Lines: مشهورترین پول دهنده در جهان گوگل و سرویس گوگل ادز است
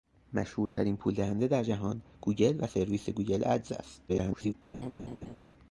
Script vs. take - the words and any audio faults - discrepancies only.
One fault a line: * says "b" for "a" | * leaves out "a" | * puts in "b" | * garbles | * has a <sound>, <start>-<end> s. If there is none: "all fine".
* has a dropout, 0.7-0.8 s
* garbles
* has a laugh, 4.7-5.4 s